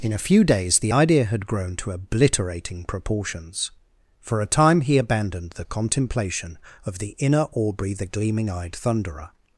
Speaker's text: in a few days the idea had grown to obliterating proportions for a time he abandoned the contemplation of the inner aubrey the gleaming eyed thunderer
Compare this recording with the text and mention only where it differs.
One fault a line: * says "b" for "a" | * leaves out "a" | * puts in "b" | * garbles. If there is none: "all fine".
all fine